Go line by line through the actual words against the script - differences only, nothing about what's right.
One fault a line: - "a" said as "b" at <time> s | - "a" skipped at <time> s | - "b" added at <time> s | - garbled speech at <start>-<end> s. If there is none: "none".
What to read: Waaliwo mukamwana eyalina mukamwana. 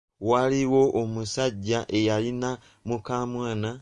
- "mukamwana" said as "omusajja" at 1.0 s